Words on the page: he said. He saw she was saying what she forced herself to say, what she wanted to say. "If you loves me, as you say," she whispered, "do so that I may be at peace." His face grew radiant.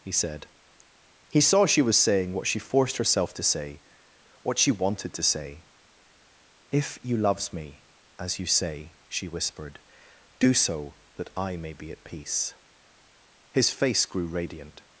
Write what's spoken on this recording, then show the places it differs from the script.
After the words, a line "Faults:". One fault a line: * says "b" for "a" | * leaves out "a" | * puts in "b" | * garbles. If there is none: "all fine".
he said. He saw she was saying what she forced herself to say, what she wanted to say. "If you loves me, as you say," she whispered, "do so that I may be at peace." His face grew radiant.
Faults:
all fine